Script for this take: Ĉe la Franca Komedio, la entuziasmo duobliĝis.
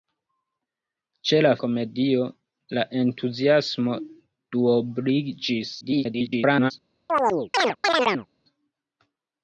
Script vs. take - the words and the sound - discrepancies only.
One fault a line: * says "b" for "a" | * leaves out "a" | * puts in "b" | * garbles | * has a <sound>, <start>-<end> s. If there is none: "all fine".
* leaves out "Franca"
* garbles
* has a chirp, 7.1-8.3 s